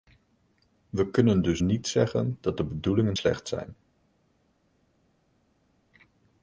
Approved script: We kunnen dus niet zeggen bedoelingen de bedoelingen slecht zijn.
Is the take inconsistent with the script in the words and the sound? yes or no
yes